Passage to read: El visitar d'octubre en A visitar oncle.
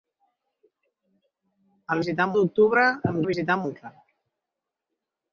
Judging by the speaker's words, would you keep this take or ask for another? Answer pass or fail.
pass